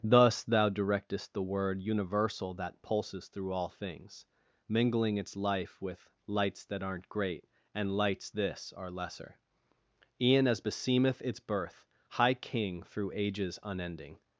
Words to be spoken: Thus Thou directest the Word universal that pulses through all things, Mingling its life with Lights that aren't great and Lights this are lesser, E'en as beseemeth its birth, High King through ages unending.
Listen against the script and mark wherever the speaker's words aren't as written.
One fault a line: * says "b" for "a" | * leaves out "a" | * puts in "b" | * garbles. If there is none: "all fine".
all fine